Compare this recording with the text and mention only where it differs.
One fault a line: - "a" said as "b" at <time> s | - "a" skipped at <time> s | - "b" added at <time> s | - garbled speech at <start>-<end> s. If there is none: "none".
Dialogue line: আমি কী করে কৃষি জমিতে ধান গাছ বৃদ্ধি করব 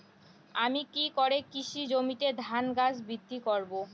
none